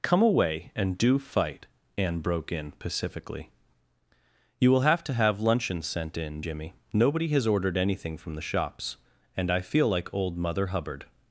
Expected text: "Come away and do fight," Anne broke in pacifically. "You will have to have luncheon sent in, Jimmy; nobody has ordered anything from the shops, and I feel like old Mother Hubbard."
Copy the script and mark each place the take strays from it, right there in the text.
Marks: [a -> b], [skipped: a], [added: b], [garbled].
"Come away and do fight," Anne broke in pacifically. "You will have to have luncheon sent in, Jimmy; nobody has ordered anything from the shops, and I feel like old Mother Hubbard."